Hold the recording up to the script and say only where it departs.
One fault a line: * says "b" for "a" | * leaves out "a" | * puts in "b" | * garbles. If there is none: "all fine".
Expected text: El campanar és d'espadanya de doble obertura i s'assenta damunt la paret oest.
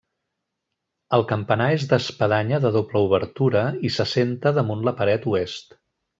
all fine